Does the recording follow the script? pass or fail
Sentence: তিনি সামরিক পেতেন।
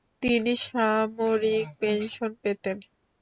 fail